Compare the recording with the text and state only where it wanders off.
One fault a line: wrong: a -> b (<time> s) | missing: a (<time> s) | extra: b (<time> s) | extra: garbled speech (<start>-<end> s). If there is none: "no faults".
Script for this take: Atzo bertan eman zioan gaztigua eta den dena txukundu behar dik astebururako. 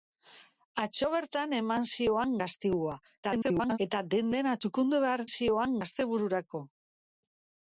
extra: garbled speech (3.2-3.8 s)
wrong: dik -> zioan (5.3 s)